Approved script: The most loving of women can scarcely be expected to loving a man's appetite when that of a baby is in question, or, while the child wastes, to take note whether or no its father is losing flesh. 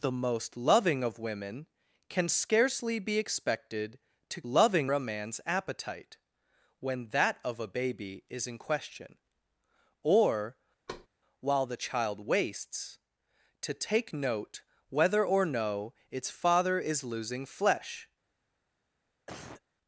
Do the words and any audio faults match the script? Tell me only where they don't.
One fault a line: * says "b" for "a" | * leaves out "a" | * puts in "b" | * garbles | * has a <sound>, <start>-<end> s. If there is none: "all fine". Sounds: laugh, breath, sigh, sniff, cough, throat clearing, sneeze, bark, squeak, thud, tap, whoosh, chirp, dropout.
* has a thud, 10.9-11.1 s
* has a cough, 19.3-19.6 s